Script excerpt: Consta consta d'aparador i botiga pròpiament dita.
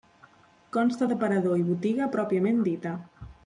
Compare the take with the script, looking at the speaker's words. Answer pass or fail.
fail